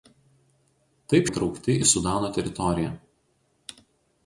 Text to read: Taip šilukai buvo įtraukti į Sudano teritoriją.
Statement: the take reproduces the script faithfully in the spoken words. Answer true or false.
false